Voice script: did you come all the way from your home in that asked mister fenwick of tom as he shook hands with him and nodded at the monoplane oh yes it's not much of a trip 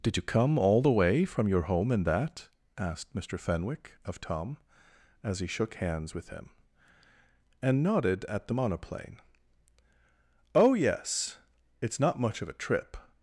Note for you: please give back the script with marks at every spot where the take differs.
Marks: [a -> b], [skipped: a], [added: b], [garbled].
did you come all the way from your home in that asked mister fenwick of tom as he shook hands with him and nodded at the monoplane oh yes it's not much of a trip